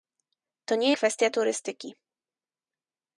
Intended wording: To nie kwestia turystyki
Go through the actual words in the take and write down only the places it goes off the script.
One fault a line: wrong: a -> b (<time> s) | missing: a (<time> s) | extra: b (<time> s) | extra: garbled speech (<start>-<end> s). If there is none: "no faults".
no faults